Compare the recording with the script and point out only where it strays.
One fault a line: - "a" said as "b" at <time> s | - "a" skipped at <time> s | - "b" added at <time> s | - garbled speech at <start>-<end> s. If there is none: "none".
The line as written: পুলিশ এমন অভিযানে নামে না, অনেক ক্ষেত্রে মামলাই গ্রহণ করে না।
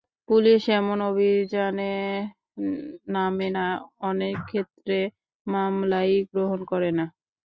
none